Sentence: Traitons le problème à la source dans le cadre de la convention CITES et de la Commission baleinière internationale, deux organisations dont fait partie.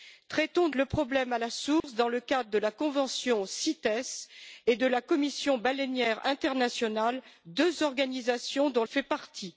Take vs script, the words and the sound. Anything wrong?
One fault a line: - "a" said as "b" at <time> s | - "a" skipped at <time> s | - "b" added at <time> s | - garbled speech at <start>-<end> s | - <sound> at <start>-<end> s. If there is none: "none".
- dropout at 1.8-1.8 s